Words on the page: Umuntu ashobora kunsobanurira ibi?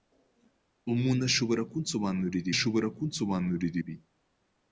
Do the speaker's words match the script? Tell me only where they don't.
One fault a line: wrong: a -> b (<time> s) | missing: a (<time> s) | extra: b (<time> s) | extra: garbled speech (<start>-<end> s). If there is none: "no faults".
extra: ashobora kunsobanurira (2.5 s)